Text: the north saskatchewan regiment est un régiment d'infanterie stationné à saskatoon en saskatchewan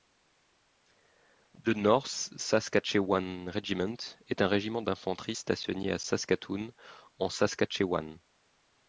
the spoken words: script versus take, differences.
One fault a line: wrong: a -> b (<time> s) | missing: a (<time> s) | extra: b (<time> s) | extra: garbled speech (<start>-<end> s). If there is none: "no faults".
no faults